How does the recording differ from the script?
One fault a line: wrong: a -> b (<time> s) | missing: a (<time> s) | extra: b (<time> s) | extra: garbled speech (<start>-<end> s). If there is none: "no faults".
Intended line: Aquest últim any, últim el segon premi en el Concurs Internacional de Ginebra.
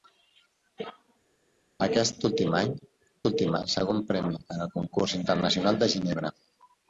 no faults